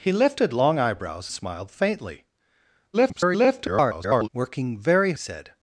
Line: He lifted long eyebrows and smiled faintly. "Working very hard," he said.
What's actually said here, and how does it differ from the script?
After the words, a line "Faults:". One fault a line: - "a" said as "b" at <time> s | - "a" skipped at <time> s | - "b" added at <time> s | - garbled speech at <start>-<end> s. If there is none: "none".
He lifted long eyebrows smiled faintly. [garbled] "Working very said.
Faults:
- "and" skipped at 1.3 s
- garbled speech at 2.9-4.3 s
- "hard he" skipped at 5.1 s